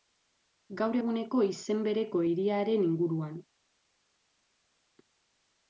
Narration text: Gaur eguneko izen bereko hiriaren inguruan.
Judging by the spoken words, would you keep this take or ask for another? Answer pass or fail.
pass